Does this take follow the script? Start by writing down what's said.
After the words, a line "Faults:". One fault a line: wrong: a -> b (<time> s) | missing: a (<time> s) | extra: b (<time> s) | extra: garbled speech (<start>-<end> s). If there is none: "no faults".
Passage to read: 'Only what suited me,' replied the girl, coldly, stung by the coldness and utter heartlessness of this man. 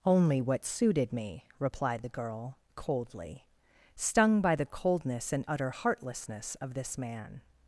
'Only what suited me,' replied the girl, coldly, stung by the coldness and utter heartlessness of this man.
Faults:
no faults